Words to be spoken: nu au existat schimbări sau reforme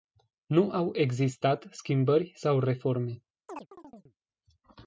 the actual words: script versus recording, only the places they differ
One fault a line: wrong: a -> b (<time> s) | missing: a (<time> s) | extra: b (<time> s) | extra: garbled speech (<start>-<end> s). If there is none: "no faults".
no faults